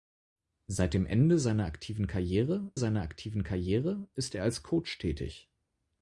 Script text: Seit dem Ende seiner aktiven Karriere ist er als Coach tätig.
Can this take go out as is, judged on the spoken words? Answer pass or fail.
fail